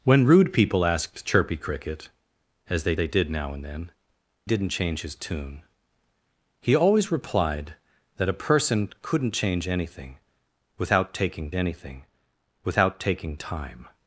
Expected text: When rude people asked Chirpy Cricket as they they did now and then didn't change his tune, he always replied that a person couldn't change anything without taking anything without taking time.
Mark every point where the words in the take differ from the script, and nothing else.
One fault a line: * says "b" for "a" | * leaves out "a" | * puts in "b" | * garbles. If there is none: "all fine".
all fine